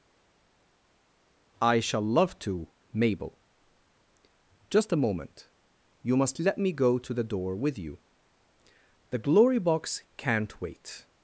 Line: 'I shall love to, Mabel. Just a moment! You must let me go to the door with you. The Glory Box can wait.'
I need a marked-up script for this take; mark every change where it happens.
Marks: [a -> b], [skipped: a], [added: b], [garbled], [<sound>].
'I shall love to, Mabel. Just a moment! You must let me go to the door with you. The Glory Box [can -> can't] wait.'